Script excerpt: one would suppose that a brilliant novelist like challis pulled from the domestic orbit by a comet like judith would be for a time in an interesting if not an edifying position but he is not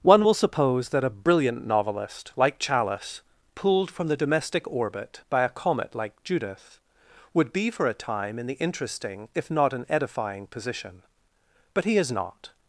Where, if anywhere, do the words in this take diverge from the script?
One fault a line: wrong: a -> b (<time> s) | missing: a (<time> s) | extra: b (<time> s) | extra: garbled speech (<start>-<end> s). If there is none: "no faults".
wrong: would -> will (0.2 s)
wrong: an -> the (8.5 s)